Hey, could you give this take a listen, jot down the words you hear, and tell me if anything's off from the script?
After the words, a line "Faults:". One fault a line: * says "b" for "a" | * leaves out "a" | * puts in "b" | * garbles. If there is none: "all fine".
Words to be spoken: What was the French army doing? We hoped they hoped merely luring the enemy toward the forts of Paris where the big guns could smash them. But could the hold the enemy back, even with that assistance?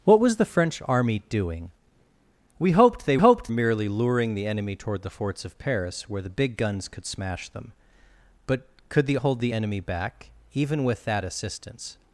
What was the French army doing? We hoped they hoped merely luring the enemy toward the forts of Paris where the big guns could smash them. But could the hold the enemy back, even with that assistance?
Faults:
all fine